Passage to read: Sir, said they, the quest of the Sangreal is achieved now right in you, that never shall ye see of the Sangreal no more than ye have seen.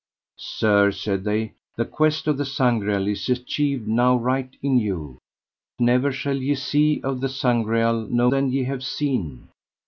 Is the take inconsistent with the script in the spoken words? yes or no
yes